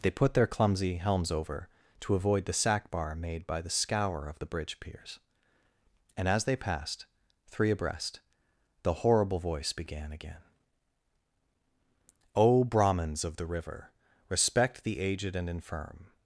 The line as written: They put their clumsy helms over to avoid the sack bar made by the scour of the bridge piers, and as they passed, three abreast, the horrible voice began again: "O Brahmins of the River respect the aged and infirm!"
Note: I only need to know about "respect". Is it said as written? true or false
true